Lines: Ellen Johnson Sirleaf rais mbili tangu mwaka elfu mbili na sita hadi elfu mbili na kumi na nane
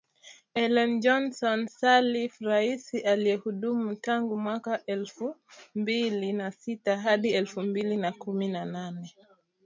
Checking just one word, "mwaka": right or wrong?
right